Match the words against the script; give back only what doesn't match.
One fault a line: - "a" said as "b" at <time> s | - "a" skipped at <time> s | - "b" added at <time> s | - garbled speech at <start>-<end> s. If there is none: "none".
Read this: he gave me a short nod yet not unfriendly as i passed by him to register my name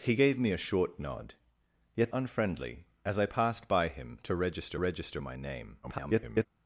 - "not" skipped at 2.1 s
- "register" added at 4.7 s
- garbled speech at 5.8-6.5 s